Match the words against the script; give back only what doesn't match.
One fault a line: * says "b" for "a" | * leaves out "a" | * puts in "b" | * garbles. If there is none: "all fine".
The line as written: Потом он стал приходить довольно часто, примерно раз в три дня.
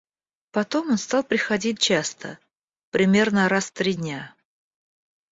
* leaves out "довольно"